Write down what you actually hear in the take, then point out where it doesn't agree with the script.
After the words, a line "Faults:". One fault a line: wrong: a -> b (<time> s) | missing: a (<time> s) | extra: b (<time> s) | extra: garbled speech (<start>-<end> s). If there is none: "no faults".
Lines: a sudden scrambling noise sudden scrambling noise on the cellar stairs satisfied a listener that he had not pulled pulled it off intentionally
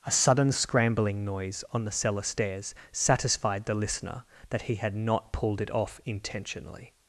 a sudden scrambling noise on the cellar stairs satisfied the listener that he had not pulled it off intentionally
Faults:
missing: sudden scrambling noise (1.6 s)
wrong: a -> the (3.6 s)
missing: pulled (5.6 s)